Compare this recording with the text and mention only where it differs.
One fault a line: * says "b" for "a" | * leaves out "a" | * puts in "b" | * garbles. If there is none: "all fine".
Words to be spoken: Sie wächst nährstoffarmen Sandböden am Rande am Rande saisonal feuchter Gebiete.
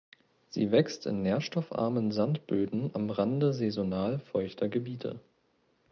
* puts in "in"
* leaves out "am Rande"